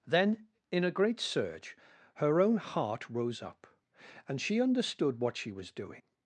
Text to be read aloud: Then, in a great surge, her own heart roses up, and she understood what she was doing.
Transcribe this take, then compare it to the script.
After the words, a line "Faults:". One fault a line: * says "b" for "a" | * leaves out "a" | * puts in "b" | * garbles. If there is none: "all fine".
Then, in a great surge, her own heart rose up, and she understood what she was doing.
Faults:
* says "rose" for "roses"